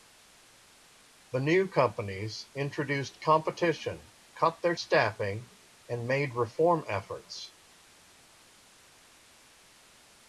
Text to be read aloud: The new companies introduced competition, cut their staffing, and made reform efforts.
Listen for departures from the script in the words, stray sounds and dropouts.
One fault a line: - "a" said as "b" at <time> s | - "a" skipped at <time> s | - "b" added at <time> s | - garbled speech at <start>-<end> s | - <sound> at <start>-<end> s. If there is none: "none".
none